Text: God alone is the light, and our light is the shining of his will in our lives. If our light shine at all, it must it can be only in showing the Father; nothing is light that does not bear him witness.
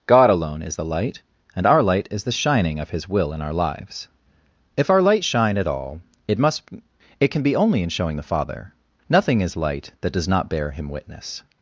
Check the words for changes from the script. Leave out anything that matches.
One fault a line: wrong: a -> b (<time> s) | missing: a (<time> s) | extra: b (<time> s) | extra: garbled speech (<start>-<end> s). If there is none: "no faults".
no faults